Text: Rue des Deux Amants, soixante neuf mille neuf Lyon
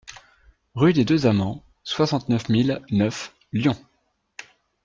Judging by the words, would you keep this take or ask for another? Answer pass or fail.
pass